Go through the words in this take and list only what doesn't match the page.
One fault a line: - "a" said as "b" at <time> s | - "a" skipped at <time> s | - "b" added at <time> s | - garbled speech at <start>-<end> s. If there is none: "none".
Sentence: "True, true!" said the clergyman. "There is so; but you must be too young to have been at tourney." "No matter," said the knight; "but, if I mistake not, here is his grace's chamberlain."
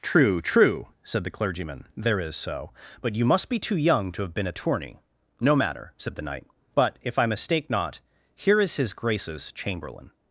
none